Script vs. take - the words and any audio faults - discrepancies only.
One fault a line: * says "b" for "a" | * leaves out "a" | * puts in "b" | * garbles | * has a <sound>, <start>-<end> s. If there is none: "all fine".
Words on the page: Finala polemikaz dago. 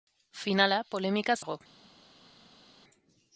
all fine